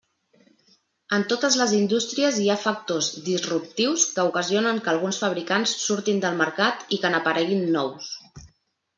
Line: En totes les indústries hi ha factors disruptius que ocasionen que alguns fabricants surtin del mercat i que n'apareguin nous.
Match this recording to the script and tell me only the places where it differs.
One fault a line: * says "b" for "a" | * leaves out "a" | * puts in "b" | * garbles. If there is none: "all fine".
all fine